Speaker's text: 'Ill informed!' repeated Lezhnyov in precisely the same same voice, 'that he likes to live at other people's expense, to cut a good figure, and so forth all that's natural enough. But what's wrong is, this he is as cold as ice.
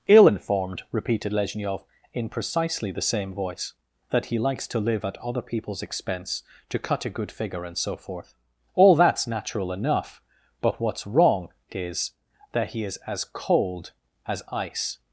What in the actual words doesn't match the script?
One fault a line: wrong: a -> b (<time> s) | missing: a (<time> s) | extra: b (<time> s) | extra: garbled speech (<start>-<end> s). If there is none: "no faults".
missing: same (3.3 s)
wrong: this -> that (12.5 s)